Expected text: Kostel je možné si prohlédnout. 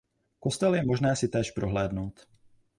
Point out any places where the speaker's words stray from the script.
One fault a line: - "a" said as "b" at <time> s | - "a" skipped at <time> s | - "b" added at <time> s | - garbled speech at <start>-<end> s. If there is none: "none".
- "též" added at 1.3 s